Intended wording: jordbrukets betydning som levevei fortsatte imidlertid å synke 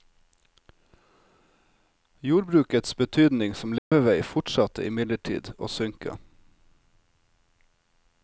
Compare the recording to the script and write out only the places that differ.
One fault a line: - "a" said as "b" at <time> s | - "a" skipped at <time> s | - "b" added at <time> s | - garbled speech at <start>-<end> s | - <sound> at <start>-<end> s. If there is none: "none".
- dropout at 3.8-3.9 s